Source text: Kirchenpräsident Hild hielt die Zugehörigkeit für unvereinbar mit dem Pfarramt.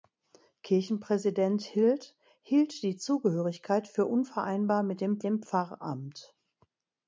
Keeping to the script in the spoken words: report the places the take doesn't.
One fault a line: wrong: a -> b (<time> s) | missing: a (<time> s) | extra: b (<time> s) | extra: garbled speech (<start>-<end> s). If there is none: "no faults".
extra: dem (5.2 s)